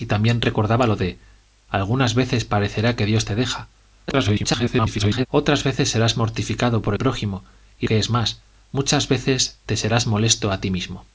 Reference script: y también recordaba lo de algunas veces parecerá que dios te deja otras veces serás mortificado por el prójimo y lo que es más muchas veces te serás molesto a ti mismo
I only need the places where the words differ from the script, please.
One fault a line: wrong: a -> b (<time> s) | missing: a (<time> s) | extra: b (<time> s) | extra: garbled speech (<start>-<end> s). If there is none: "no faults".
extra: garbled speech (4.1-5.3 s)
missing: el (6.9 s)
missing: lo (7.9 s)